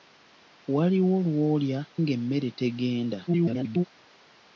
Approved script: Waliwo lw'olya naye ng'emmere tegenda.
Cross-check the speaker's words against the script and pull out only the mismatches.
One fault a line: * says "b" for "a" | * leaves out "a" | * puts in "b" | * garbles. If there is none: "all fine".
* leaves out "naye"
* garbles